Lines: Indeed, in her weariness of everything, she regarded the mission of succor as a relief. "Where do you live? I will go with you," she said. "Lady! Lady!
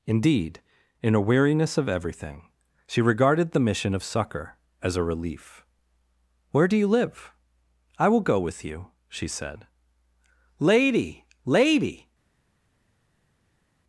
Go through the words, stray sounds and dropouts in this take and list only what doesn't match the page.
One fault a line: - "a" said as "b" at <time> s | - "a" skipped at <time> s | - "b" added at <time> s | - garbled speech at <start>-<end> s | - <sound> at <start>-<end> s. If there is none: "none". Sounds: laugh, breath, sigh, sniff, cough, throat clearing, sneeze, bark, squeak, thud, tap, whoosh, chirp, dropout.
- "her" said as "a" at 1.1 s